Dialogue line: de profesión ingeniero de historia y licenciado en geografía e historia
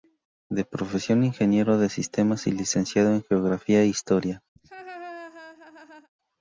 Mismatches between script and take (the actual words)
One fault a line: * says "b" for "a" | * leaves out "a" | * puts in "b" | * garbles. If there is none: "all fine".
* says "sistemas" for "historia"